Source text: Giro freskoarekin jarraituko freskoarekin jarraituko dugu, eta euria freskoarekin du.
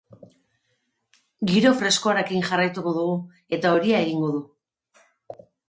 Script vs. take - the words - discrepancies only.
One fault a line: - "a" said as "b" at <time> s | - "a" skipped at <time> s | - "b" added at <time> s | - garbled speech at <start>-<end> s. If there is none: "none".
- "freskoarekin jarraituko" skipped at 3.0 s
- "freskoarekin" said as "egingo" at 4.1 s